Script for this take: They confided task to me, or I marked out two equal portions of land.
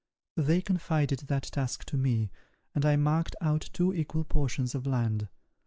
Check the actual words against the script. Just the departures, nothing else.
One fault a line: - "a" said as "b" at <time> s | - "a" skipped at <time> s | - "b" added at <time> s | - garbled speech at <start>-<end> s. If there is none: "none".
- "that" added at 1.3 s
- "or" said as "and" at 2.7 s